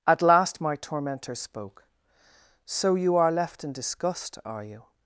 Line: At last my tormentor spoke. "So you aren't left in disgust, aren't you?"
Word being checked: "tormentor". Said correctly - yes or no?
yes